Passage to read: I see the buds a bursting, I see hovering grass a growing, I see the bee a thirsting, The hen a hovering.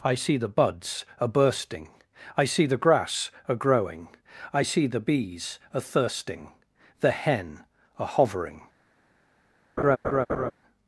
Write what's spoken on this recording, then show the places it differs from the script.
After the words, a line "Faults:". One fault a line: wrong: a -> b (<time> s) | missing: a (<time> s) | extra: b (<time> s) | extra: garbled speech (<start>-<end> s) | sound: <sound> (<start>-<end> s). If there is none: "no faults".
I see the buds a bursting, I see the grass a growing, I see the bees a thirsting, The hen a hovering.
Faults:
wrong: hovering -> the (2.6 s)
wrong: bee -> bees (5.0 s)
sound: laugh (9.8-10.5 s)